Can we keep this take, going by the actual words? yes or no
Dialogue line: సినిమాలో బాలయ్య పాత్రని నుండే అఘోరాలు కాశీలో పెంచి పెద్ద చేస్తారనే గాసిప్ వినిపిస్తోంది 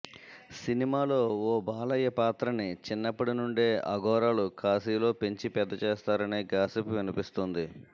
no